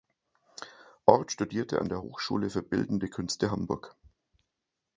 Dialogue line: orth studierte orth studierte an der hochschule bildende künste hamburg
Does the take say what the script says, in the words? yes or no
no